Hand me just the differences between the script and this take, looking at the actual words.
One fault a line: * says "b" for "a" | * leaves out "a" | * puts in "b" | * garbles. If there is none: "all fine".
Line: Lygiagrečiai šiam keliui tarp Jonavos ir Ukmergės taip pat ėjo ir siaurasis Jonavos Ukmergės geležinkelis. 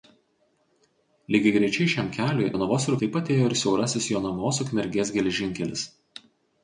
* leaves out "tarp"
* leaves out "Ukmergės"